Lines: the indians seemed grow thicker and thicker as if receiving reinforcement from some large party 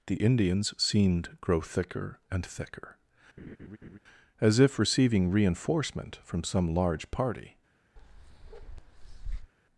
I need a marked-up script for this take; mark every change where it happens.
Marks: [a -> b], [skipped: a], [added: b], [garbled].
the indians seemed grow thicker and thicker as if receiving reinforcement from some large party